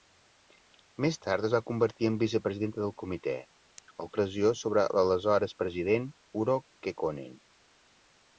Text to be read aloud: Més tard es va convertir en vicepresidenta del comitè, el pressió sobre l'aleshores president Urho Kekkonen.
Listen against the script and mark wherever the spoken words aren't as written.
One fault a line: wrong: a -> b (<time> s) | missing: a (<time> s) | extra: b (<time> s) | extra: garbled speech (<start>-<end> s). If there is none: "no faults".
no faults